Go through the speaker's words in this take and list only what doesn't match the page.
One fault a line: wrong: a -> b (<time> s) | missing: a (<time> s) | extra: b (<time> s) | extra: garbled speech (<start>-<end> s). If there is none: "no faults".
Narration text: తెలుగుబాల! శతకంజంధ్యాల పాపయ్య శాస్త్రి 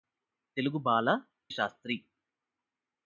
missing: శతకంజంధ్యాల పాపయ్య (1.1 s)